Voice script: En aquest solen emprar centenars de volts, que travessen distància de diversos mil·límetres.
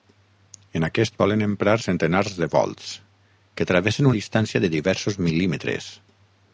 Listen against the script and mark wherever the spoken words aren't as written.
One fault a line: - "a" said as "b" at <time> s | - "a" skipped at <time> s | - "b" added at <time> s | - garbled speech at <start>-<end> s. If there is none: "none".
none